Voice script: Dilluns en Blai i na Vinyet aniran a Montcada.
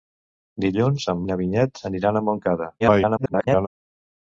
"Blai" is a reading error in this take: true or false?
true